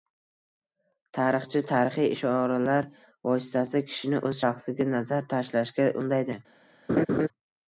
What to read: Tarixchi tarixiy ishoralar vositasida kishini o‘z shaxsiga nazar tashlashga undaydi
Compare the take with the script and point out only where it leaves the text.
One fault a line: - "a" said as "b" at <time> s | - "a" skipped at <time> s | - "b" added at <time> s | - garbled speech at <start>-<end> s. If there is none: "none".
none